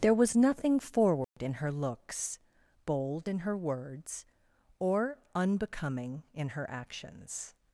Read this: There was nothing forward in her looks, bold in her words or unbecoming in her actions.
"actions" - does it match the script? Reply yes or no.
yes